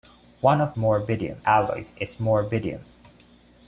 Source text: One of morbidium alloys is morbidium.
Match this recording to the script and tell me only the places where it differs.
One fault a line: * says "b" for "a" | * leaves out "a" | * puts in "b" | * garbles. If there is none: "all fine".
all fine